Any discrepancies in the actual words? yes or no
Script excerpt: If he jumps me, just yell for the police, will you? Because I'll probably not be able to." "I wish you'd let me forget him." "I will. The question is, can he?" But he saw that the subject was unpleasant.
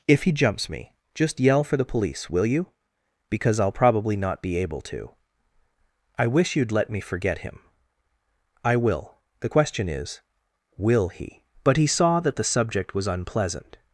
yes